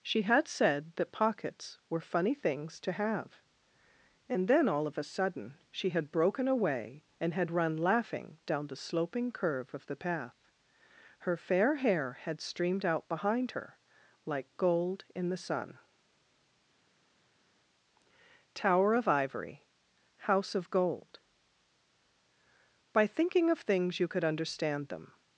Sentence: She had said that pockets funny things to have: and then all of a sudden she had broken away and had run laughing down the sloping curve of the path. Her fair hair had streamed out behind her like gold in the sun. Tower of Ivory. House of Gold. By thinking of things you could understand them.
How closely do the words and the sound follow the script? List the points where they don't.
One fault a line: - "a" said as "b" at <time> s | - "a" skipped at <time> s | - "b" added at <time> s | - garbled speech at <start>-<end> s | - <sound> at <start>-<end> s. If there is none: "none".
- "were" added at 1.9 s